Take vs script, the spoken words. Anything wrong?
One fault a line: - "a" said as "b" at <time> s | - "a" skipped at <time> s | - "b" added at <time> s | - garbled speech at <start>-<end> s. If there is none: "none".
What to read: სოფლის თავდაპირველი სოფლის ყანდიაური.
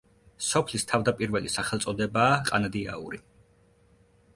- "სოფლის" said as "სახელწოდებაა" at 1.5 s